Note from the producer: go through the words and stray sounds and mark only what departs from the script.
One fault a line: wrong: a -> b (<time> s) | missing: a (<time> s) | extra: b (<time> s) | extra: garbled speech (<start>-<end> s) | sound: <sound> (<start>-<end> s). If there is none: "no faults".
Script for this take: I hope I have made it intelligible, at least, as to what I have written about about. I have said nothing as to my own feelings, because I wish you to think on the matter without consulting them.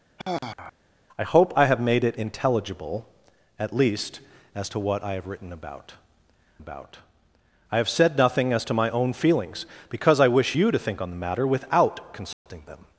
sound: sigh (0.2-0.7 s)
sound: dropout (12.3-12.5 s)